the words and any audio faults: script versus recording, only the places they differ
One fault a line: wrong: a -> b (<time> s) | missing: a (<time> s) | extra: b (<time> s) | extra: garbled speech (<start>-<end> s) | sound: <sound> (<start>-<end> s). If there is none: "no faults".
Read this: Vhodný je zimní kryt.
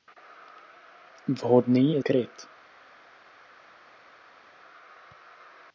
missing: zimní (2.0 s)